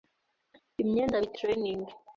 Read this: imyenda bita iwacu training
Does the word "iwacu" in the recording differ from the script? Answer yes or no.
yes